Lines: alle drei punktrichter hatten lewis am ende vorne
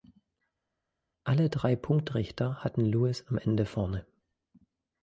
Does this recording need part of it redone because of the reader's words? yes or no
no